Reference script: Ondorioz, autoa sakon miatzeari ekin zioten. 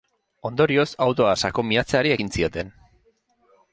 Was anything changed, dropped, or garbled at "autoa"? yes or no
no